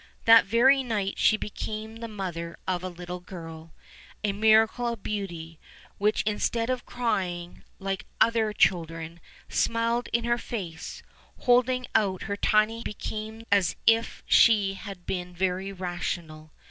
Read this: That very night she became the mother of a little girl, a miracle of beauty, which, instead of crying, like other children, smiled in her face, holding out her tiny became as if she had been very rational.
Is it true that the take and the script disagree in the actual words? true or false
false